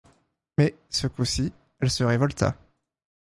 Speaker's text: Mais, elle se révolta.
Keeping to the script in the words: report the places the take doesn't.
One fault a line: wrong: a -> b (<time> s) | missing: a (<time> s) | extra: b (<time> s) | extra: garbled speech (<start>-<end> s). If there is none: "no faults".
extra: ce coup ci (0.9 s)